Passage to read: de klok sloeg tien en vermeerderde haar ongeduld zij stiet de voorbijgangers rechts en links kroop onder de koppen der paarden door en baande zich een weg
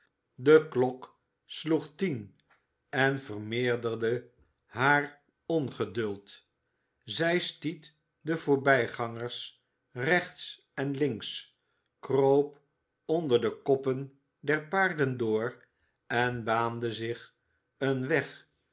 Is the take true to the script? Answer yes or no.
yes